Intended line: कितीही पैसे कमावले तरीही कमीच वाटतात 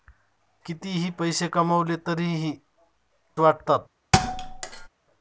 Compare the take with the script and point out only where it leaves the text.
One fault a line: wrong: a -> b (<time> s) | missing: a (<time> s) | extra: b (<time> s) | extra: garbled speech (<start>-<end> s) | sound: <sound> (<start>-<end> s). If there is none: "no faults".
missing: कमीच (2.5 s)
sound: thud (4.1-4.9 s)